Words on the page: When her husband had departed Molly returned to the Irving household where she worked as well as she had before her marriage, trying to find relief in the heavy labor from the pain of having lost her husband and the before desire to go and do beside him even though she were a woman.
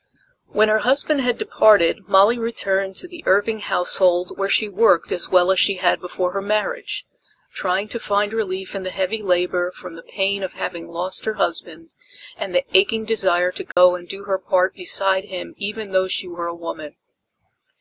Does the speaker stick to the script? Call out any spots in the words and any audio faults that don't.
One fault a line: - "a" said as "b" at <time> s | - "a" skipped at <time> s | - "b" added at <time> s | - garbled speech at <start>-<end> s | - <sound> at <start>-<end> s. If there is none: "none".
- "before" said as "aching" at 12.7 s
- dropout at 13.7-13.8 s
- "her part" added at 14.2 s